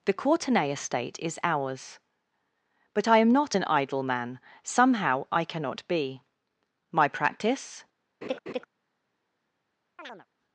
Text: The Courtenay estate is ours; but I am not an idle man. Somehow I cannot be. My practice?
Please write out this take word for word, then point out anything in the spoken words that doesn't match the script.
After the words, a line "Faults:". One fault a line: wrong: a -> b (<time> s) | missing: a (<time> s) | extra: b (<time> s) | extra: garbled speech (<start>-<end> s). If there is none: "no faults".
The Courtenay estate is ours; but I am not an idle man. Somehow I cannot be. My practice?
Faults:
no faults